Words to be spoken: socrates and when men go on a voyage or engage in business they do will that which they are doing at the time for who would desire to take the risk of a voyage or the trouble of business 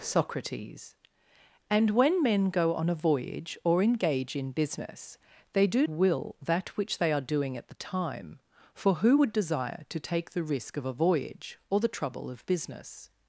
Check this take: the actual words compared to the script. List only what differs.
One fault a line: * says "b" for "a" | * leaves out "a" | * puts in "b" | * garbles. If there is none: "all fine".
all fine